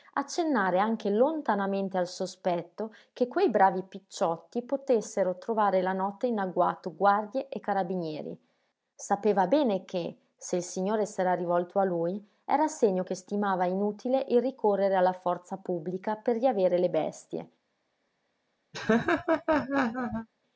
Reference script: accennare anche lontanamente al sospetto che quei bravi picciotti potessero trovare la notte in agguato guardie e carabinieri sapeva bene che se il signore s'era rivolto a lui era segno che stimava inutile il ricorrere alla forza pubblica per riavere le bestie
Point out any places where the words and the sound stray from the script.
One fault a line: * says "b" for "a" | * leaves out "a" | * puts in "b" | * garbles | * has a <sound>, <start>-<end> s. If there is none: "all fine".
* has a laugh, 18.7-20.3 s